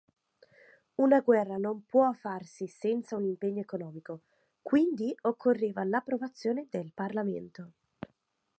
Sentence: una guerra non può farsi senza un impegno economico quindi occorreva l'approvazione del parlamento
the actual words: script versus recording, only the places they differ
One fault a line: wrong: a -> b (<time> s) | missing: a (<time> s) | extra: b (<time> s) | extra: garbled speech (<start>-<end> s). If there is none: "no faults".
no faults